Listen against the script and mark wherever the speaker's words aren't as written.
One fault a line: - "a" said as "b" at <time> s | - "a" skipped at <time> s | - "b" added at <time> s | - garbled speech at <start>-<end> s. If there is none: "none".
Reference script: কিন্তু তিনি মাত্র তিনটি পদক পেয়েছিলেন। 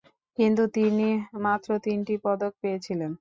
none